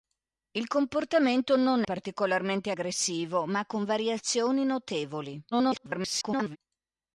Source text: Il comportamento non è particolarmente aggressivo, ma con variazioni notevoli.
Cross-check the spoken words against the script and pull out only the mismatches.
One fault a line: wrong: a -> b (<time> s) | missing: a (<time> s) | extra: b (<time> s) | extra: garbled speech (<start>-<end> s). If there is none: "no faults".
missing: è (1.8 s)
extra: garbled speech (5.5-6.6 s)